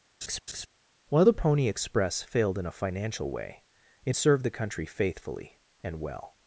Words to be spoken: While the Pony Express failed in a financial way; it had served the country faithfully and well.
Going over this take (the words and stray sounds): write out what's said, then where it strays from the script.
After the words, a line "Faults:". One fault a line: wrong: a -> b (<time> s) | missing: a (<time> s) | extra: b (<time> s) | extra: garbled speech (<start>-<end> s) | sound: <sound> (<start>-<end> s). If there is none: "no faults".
While the Pony Express failed in a financial way; it served the country faithfully and well.
Faults:
sound: laugh (0.2-0.7 s)
missing: had (4.2 s)